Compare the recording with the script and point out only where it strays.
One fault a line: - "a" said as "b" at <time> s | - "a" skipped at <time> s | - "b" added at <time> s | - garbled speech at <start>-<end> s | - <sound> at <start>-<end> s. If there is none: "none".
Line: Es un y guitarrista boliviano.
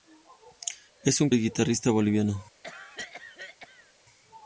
- cough at 2.6-3.9 s